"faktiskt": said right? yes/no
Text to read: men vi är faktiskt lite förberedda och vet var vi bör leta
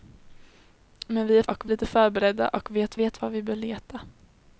no